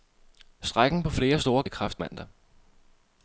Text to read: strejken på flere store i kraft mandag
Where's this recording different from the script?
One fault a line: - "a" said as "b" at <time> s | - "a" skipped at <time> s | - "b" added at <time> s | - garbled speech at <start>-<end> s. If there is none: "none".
none